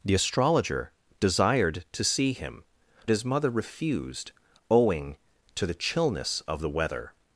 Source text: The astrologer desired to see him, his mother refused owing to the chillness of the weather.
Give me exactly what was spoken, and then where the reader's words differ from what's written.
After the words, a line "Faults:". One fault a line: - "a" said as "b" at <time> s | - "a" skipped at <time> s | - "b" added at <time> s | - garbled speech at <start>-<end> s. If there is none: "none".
The astrologer desired to see him, his mother refused owing to the chillness of the weather.
Faults:
none